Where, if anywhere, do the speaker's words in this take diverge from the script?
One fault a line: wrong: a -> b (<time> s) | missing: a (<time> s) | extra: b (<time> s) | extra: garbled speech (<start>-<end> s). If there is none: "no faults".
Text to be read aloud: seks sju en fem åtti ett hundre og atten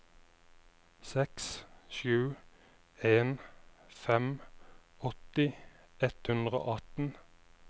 no faults